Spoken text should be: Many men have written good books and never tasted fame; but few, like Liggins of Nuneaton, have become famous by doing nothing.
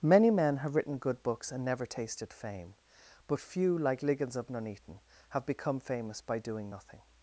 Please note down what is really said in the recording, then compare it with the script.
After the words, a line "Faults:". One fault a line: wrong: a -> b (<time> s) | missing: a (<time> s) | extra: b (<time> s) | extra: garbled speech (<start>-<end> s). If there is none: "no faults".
Many men have written good books and never tasted fame; but few, like Liggins of Nuneaton, have become famous by doing nothing.
Faults:
no faults